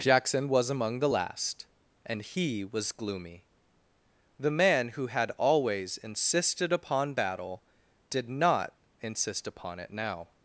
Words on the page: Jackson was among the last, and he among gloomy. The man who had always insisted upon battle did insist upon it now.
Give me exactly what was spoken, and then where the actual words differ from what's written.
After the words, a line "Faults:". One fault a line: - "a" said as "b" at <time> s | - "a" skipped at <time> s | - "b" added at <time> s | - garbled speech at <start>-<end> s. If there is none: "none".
Jackson was among the last, and he was gloomy. The man who had always insisted upon battle did not insist upon it now.
Faults:
- "among" said as "was" at 2.6 s
- "not" added at 8.3 s